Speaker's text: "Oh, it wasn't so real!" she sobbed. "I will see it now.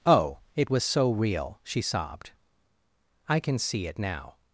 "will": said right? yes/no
no